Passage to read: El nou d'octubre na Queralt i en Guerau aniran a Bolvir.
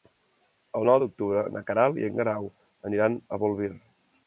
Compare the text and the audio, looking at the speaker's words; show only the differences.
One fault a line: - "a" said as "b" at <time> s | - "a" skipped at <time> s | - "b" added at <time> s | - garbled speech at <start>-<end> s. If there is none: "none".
none